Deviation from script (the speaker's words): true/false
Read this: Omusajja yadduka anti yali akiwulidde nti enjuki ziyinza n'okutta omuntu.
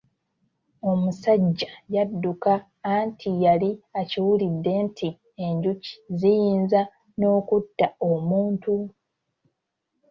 false